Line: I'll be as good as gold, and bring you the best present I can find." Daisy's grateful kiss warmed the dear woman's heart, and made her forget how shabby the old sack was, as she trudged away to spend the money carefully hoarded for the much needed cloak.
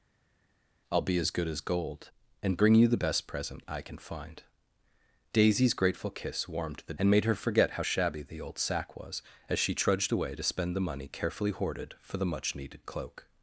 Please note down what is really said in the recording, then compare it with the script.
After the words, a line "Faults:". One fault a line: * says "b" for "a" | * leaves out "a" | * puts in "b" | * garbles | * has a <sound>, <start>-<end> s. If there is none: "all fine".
I'll be as good as gold, and bring you the best present I can find." Daisy's grateful kiss warmed the and made her forget how shabby the old sack was, as she trudged away to spend the money carefully hoarded for the much needed cloak.
Faults:
* leaves out "dear woman's heart"